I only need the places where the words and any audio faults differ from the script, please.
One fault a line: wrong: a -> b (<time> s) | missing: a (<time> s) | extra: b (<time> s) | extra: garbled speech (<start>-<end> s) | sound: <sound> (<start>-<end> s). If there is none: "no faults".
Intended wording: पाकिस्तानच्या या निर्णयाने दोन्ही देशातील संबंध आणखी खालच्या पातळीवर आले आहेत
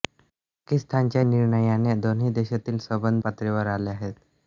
missing: या (1.2 s)
missing: आणखी खालच्या (3.2 s)